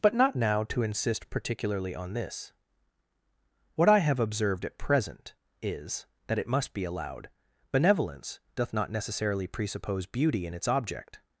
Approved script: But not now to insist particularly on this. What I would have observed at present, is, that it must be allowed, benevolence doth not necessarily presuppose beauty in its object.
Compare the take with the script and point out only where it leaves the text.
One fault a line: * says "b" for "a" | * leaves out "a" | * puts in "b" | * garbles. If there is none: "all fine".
* leaves out "would"